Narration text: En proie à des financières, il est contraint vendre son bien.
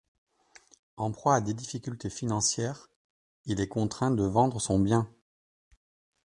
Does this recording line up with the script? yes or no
no